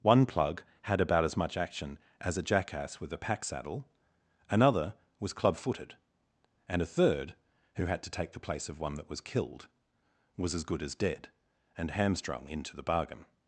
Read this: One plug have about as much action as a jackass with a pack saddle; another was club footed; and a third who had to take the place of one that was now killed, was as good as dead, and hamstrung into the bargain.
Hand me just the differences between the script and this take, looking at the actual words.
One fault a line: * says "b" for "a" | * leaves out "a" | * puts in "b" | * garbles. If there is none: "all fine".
* says "had" for "have"
* leaves out "now"